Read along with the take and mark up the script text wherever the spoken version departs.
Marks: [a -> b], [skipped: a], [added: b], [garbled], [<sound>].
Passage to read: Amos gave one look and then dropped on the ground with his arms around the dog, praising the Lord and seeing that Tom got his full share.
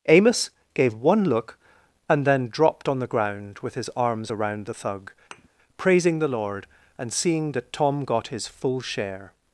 Amos gave one look and then dropped on the ground with his arms around the [dog, -> thug] [thud] praising the Lord and seeing that Tom got his full share.